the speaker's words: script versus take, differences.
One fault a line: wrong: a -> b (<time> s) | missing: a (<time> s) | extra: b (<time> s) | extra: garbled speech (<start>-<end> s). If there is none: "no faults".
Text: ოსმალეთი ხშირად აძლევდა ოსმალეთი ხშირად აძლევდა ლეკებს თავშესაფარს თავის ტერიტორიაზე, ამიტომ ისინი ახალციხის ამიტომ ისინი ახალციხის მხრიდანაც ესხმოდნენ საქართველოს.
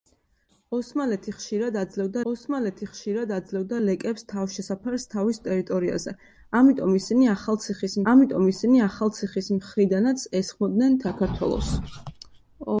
no faults